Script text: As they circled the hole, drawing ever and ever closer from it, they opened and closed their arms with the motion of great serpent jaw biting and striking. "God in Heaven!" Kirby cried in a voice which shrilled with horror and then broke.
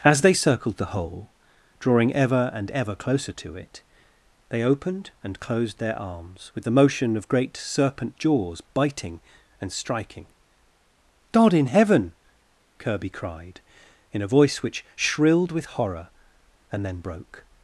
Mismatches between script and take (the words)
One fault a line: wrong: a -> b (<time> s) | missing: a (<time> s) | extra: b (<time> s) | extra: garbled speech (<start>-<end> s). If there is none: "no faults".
wrong: from -> to (3.3 s)
wrong: jaw -> jaws (8.2 s)